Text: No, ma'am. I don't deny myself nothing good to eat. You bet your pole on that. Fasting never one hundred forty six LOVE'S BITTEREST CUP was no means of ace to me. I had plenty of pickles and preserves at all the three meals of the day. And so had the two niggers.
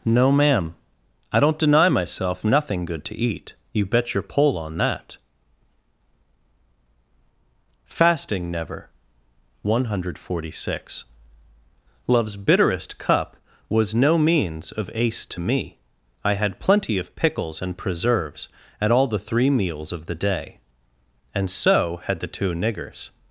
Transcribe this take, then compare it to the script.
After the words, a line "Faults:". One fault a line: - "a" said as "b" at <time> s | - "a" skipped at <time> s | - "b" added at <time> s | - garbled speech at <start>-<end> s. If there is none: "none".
No, ma'am. I don't deny myself nothing good to eat. You bet your pole on that. Fasting never one hundred forty six LOVE'S BITTEREST CUP was no means of ace to me. I had plenty of pickles and preserves at all the three meals of the day. And so had the two niggers.
Faults:
none